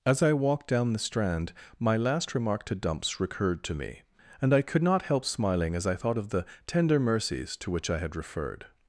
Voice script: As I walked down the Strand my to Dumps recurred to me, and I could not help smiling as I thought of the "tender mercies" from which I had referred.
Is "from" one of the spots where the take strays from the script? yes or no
yes